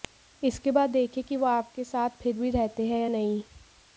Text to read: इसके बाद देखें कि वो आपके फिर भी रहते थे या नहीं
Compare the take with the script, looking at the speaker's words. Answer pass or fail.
fail